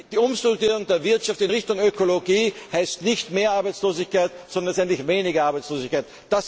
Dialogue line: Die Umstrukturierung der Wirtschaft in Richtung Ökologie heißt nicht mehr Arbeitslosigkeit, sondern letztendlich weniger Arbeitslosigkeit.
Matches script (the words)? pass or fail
pass